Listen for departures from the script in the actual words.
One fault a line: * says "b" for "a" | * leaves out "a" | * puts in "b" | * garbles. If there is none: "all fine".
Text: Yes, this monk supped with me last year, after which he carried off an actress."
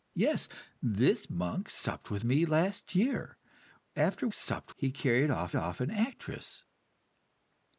* says "supped" for "which"
* puts in "off"